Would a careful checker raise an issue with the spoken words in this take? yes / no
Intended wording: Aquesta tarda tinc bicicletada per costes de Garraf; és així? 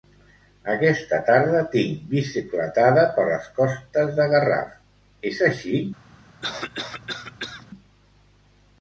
yes